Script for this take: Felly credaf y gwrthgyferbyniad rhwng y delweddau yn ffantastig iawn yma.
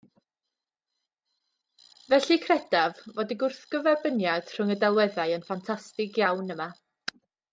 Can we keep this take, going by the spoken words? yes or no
no